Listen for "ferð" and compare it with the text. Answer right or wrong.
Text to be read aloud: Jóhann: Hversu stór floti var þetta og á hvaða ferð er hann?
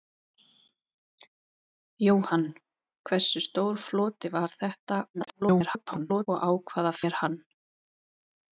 wrong